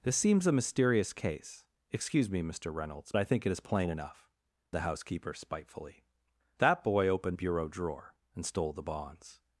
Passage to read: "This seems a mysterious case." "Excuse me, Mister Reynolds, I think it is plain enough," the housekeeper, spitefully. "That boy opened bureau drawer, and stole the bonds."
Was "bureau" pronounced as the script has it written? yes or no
yes